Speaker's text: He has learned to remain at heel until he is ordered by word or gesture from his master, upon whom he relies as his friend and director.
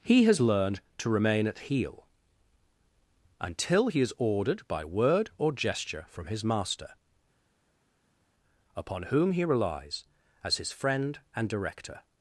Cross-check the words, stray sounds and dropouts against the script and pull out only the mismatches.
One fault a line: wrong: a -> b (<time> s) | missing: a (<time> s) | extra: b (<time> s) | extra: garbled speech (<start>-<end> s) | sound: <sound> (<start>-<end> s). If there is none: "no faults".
no faults